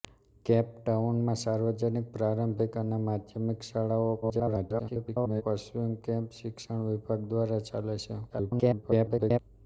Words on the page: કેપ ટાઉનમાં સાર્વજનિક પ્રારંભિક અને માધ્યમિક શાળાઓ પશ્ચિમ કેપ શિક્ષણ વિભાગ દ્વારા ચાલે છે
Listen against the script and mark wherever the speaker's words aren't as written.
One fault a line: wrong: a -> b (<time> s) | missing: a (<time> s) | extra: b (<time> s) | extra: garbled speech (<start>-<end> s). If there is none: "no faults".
extra: garbled speech (4.2-5.4 s)
extra: garbled speech (8.3-9.4 s)